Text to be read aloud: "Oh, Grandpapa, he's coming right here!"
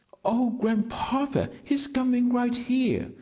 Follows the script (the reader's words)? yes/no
yes